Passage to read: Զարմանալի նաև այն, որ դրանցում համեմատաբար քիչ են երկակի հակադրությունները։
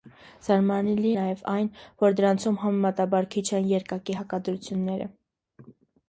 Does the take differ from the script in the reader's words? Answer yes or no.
no